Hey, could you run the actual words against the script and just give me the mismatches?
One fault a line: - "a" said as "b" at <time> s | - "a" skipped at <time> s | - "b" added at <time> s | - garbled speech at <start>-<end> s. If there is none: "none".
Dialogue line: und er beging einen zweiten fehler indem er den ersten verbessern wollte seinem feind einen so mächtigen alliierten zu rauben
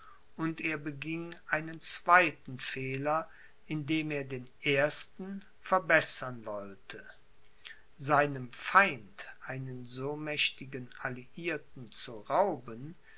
none